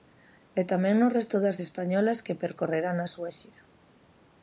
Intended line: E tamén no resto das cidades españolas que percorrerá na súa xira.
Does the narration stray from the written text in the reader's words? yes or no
yes